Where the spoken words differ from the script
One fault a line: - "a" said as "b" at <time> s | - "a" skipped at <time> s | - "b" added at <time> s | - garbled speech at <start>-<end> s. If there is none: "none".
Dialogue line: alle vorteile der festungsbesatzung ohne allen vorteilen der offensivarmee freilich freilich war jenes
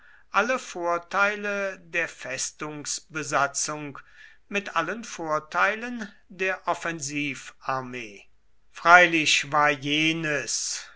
- "ohne" said as "mit" at 4.5 s
- "freilich" skipped at 9.5 s